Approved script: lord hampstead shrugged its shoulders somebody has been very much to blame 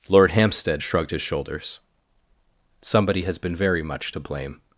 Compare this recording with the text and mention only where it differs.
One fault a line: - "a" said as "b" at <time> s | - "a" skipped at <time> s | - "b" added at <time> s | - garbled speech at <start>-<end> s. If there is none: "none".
- "its" said as "his" at 1.1 s